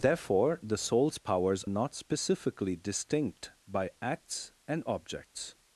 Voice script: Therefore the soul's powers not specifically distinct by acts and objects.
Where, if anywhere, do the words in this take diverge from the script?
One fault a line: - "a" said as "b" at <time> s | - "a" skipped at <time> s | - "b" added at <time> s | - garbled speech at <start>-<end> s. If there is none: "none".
none